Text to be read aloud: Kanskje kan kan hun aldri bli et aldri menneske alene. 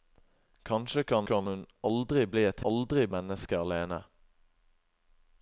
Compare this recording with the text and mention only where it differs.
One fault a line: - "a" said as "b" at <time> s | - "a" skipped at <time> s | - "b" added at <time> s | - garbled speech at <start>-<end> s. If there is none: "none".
none